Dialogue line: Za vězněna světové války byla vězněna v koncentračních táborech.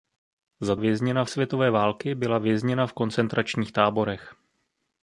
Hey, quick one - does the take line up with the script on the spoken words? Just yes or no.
yes